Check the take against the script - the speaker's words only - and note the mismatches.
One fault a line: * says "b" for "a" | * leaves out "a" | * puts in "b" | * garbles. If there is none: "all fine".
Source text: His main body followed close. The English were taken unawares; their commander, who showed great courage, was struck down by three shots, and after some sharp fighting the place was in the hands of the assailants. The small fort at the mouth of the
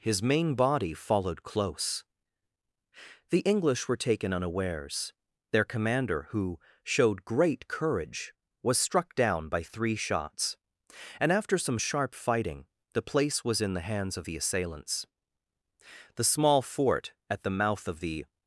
all fine